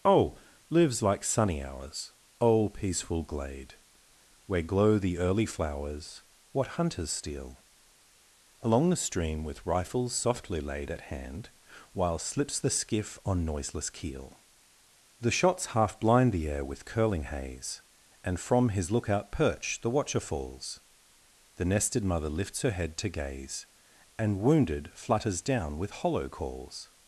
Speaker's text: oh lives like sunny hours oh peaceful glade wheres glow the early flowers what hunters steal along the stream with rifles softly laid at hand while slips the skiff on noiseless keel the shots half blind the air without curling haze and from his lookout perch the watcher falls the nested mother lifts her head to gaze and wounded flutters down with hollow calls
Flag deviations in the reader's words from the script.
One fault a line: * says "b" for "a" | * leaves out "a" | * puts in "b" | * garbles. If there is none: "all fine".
* says "where" for "wheres"
* says "with" for "without"